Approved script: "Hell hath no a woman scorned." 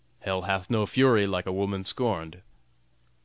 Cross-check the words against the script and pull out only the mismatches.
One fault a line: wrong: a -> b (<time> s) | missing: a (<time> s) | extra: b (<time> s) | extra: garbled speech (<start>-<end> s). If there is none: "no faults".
extra: fury like (0.9 s)